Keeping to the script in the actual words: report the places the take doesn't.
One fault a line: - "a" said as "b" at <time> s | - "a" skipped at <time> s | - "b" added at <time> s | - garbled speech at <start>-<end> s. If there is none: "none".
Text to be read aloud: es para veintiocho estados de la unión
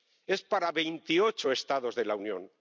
none